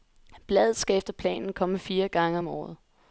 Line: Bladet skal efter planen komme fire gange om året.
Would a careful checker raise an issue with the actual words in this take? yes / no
no